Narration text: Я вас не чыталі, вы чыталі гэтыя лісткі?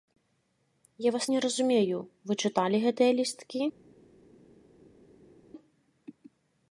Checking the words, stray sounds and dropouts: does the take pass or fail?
fail